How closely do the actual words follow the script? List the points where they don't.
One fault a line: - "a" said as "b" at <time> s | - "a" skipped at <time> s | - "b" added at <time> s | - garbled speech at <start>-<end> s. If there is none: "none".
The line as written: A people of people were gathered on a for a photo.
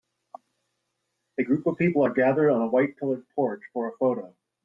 - "people" said as "group" at 1.4 s
- "were" said as "are" at 2.0 s
- "white pillared porch" added at 2.7 s